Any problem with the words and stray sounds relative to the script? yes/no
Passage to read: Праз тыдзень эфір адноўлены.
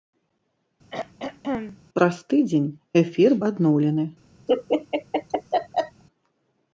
yes